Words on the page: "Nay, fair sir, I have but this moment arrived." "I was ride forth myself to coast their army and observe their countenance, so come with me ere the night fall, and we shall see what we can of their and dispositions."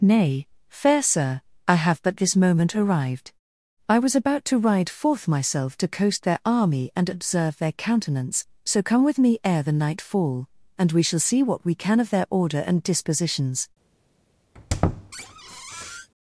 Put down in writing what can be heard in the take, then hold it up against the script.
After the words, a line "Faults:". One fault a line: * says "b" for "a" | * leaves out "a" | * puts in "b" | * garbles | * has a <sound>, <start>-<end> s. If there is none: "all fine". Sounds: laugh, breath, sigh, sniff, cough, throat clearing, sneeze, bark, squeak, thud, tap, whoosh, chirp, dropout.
"Nay, fair sir, I have but this moment arrived." "I was about to ride forth myself to coast their army and observe their countenance, so come with me ere the night fall, and we shall see what we can of their order and dispositions."
Faults:
* puts in "about to"
* puts in "order"
* has a squeak, 14.5-16.1 s